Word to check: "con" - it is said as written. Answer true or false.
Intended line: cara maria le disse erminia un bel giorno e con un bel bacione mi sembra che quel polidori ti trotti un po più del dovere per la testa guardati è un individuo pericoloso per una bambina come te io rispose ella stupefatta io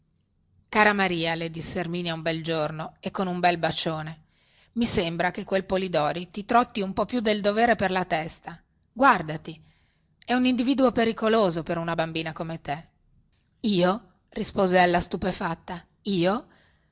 true